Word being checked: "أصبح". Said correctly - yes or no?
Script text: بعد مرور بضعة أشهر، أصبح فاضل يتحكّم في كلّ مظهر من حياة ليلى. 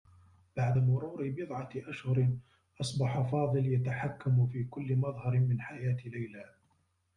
yes